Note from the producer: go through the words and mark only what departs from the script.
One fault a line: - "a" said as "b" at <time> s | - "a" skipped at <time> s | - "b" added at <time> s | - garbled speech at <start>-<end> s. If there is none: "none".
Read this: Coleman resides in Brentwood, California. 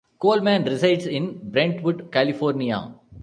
none